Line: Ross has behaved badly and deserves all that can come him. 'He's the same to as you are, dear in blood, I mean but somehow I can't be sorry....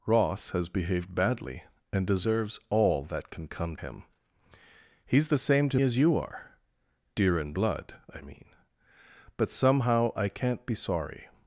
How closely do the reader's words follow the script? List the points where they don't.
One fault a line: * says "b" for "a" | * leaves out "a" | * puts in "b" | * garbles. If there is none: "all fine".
all fine